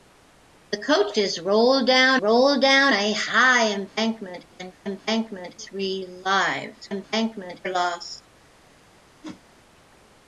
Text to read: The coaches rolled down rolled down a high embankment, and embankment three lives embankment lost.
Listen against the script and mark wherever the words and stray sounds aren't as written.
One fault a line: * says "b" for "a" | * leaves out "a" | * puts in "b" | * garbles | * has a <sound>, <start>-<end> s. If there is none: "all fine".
* has a whoosh, 9.2-9.4 s